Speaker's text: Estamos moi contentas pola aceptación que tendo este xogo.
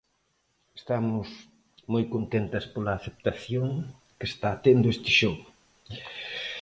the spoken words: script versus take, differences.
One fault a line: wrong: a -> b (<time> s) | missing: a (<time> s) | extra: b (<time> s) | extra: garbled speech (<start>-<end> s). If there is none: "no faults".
extra: está (4.3 s)